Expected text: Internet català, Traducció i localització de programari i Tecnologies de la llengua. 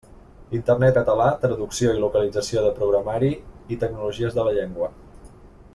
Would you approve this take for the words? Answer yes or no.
yes